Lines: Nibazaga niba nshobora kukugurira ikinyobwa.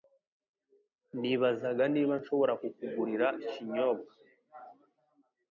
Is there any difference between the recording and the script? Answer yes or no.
no